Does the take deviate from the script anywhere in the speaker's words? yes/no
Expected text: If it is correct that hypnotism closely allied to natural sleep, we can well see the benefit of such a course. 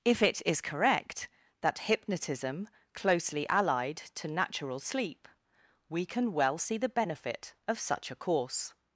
no